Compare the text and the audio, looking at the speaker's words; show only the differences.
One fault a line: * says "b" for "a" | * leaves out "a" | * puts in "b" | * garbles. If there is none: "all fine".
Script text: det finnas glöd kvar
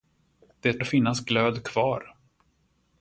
all fine